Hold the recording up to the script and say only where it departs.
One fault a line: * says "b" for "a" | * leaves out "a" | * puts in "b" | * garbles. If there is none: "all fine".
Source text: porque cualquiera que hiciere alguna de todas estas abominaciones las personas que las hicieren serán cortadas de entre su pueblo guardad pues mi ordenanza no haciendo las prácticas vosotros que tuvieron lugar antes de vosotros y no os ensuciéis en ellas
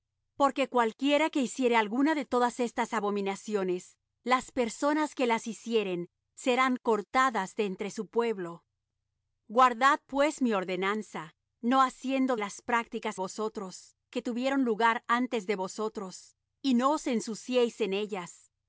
all fine